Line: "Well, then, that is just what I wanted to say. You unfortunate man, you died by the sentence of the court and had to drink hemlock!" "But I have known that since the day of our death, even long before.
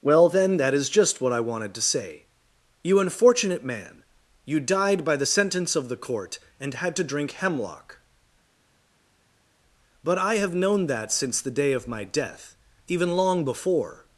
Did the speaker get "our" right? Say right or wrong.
wrong